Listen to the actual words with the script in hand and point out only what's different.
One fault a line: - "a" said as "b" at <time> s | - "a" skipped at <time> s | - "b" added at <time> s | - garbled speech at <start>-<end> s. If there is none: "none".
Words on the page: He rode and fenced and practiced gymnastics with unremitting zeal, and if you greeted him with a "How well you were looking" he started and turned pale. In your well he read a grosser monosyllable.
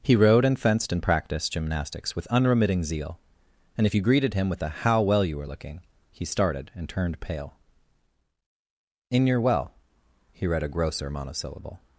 none